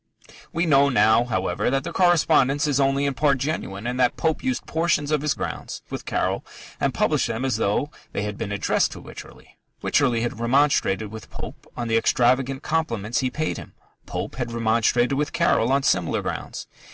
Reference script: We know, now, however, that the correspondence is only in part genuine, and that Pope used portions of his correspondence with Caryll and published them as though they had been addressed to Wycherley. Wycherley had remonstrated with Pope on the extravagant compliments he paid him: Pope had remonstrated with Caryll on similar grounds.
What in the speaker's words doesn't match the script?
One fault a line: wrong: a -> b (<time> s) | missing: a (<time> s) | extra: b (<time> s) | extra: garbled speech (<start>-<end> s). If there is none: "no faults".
wrong: correspondence -> grounds (5.3 s)